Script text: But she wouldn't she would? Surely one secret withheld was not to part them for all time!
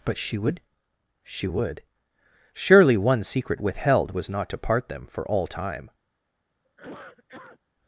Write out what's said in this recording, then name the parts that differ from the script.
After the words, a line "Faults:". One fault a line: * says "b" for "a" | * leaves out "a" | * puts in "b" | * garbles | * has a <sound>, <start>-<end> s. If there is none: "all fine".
But she would she would? Surely one secret withheld was not to part them for all time!
Faults:
* says "would" for "wouldn't"
* has a cough, 6.6-7.6 s